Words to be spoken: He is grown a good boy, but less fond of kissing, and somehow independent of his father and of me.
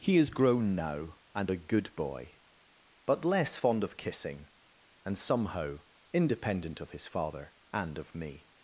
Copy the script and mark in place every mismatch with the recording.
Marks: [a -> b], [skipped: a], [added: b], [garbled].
He is grown [added: now and] a good boy, but less fond of kissing, and somehow independent of his father and of me.